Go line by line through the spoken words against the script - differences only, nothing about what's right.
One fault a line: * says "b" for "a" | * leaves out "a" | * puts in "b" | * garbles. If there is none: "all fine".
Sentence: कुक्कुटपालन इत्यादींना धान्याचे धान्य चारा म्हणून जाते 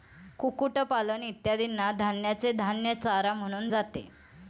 all fine